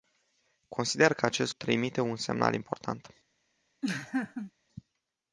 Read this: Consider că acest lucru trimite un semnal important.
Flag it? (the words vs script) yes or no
yes